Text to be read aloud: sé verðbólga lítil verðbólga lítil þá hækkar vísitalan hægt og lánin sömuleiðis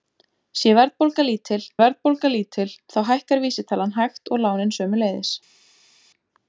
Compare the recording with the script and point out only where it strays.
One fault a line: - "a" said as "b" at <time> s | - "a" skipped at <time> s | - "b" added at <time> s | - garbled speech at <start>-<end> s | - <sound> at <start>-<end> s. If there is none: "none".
none